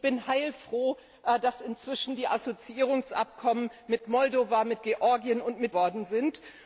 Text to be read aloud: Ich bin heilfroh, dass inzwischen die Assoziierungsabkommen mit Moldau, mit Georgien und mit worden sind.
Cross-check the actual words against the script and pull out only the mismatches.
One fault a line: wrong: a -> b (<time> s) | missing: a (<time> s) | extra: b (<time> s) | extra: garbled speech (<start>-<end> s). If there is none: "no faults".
no faults